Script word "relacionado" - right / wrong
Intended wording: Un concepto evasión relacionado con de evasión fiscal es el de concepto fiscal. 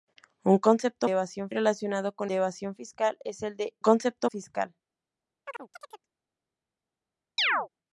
right